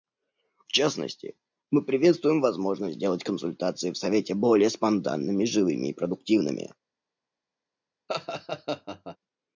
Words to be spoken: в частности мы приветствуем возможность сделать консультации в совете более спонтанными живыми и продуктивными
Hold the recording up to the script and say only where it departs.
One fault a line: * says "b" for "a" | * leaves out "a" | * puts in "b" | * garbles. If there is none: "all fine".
all fine